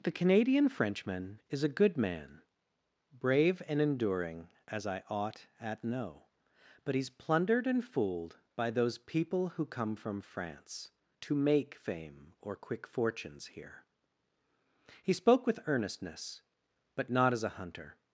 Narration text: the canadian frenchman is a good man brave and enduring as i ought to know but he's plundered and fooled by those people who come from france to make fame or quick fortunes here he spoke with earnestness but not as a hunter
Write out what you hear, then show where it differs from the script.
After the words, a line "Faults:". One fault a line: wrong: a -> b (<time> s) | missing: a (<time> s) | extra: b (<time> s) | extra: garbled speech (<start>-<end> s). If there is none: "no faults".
the canadian frenchman is a good man brave and enduring as i ought at know but he's plundered and fooled by those people who come from france to make fame or quick fortunes here he spoke with earnestness but not as a hunter
Faults:
wrong: to -> at (5.6 s)